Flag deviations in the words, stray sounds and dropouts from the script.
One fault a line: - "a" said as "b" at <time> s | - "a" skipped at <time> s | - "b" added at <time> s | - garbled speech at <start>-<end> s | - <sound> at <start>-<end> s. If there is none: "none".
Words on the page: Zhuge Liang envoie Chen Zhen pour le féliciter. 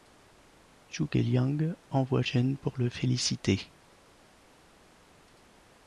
- "Chen" skipped at 2.2 s